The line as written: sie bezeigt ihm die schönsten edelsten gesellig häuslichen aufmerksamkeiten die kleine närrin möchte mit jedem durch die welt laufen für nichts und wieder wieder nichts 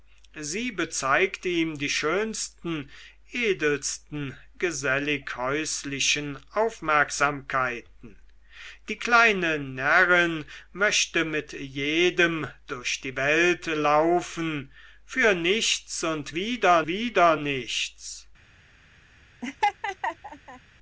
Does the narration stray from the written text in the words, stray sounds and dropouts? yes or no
yes